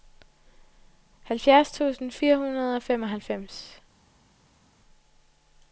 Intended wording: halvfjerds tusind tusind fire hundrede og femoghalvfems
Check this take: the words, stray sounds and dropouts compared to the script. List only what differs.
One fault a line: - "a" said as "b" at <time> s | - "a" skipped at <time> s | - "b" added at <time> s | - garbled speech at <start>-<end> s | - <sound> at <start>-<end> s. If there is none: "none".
- "tusind" skipped at 2.1 s